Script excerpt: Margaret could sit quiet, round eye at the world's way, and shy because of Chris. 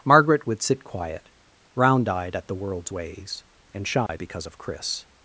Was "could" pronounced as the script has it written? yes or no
no